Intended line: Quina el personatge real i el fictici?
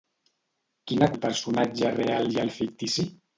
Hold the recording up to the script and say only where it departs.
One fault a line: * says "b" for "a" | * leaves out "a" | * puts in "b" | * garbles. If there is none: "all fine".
all fine